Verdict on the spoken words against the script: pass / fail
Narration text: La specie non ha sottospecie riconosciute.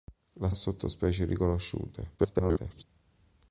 fail